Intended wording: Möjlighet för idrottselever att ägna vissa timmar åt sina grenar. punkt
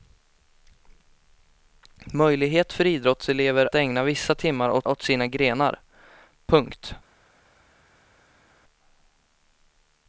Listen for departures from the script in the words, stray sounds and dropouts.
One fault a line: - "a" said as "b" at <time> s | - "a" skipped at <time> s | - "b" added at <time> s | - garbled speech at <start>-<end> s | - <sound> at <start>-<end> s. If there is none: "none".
- "att" skipped at 3.7 s
- "åt" added at 4.8 s